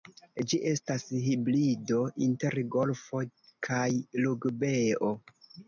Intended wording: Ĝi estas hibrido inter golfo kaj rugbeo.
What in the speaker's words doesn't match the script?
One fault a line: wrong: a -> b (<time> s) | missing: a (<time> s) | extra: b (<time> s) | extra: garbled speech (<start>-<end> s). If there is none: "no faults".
no faults